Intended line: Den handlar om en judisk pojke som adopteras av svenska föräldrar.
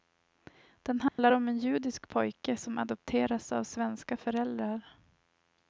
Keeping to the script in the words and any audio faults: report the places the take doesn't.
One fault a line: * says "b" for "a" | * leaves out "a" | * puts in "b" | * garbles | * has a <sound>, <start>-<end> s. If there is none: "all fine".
* has a dropout, 1.1-1.2 s